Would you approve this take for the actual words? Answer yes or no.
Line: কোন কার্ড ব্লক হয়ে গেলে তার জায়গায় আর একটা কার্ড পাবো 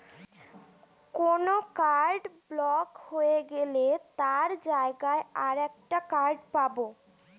yes